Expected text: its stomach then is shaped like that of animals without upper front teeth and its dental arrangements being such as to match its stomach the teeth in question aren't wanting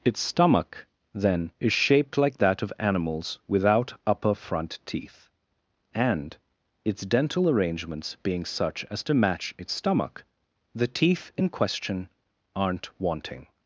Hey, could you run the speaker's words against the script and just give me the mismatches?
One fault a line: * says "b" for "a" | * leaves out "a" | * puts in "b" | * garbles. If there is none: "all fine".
all fine